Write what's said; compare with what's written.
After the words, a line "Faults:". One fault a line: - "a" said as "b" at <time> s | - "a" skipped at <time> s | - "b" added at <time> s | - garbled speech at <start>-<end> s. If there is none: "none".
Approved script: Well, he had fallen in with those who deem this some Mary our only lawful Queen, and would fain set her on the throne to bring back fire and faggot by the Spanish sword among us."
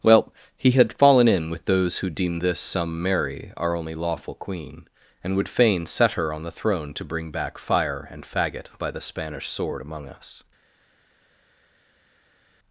Well, he had fallen in with those who deem this some Mary our only lawful Queen, and would fain set her on the throne to bring back fire and faggot by the Spanish sword among us."
Faults:
none